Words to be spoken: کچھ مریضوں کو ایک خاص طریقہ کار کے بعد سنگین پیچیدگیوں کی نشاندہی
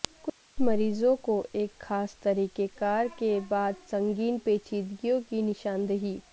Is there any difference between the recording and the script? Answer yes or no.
no